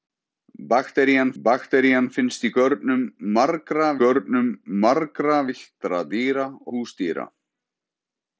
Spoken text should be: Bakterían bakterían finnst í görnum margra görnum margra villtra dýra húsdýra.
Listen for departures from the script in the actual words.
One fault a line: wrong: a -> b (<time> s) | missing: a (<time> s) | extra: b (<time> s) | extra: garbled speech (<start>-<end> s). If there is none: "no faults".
no faults